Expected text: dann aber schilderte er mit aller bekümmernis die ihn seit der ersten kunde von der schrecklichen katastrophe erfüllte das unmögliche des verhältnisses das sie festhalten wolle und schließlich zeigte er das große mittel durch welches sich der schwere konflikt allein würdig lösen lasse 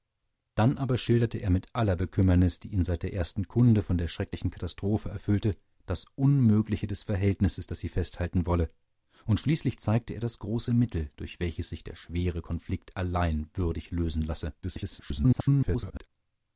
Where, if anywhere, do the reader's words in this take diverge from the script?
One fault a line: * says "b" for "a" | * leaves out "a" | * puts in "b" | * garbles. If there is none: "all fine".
* garbles